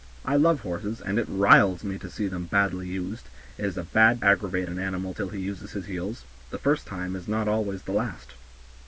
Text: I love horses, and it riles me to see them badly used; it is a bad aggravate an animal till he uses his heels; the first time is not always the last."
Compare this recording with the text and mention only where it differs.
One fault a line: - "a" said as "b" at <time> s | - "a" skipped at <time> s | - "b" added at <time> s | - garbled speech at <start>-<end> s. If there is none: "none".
none